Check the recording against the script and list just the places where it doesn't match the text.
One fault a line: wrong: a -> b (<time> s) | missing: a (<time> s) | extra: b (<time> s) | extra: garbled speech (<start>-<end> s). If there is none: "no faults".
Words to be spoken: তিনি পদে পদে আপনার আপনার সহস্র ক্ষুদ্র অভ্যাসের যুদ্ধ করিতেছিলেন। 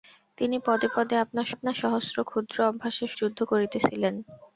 no faults